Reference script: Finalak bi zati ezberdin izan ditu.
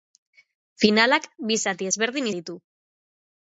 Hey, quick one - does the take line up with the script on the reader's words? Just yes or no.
no